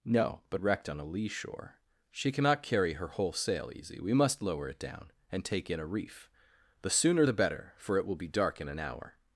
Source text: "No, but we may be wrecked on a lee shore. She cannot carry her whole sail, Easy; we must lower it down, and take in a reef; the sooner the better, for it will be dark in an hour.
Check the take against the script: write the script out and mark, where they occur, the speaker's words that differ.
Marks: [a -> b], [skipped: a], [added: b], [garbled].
"No, but [skipped: we may be] wrecked on a lee shore. She cannot carry her whole sail, Easy; we must lower it down, and take in a reef; the sooner the better, for it will be dark in an hour.